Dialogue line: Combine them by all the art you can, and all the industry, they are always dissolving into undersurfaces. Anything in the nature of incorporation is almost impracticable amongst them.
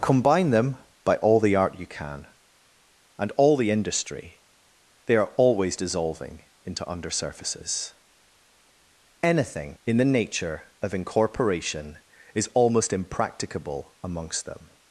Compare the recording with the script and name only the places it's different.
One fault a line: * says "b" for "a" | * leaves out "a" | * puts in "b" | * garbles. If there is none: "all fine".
all fine